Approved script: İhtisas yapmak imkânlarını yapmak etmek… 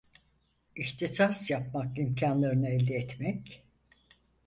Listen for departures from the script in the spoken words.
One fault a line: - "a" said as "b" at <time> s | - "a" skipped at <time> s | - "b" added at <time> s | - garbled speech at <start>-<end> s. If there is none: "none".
- "yapmak" said as "elde" at 2.7 s